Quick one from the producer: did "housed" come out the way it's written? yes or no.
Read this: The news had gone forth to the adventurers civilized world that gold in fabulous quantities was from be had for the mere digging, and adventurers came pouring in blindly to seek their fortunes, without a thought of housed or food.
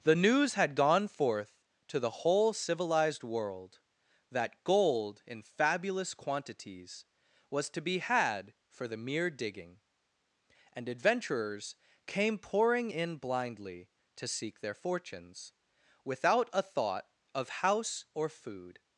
no